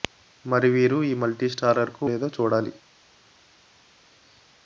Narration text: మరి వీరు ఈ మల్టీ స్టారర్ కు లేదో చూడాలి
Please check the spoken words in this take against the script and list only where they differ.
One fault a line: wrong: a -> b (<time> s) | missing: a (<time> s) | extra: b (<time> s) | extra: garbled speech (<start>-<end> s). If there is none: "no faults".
no faults